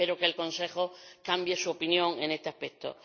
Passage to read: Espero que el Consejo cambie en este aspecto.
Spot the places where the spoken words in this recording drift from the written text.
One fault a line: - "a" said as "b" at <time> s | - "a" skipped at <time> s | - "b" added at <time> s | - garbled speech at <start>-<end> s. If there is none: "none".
- "su opinión" added at 1.5 s